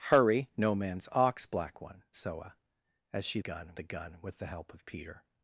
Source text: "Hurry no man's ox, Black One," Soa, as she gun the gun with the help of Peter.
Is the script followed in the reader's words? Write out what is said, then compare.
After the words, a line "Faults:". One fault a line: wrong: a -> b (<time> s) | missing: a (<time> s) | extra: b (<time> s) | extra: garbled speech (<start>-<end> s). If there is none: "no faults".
"Hurry no man's ox, Black One," Soa, as she gun the gun with the help of Peter.
Faults:
no faults